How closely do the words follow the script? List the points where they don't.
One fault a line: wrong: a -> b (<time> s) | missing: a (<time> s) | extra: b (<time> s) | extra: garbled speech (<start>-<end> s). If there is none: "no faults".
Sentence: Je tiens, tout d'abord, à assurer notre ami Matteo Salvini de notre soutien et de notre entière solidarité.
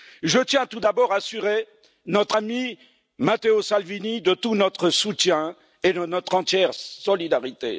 extra: tout (4.3 s)